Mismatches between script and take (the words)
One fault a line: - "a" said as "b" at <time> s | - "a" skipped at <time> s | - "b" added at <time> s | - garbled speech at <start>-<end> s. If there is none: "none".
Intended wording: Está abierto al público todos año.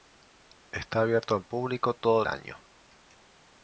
none